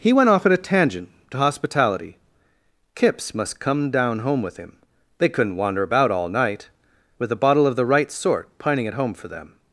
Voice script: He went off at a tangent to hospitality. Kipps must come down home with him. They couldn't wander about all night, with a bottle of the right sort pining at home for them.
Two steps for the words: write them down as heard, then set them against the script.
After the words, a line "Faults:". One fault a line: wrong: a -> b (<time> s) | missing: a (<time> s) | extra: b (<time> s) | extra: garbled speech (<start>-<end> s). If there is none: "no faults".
He went off at a tangent to hospitality. Kipps must come down home with him. They couldn't wander about all night, with a bottle of the right sort pining at home for them.
Faults:
no faults